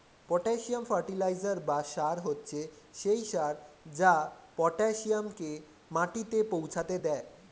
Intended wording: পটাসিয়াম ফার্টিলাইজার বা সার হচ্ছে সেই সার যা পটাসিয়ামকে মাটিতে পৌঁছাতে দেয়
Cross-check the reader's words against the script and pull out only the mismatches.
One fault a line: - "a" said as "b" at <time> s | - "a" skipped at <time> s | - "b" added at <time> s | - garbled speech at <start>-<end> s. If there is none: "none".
none